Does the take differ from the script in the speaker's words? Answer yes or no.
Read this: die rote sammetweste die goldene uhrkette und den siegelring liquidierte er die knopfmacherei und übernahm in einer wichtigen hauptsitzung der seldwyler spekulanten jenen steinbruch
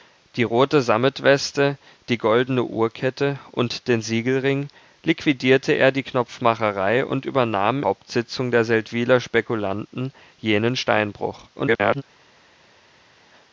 yes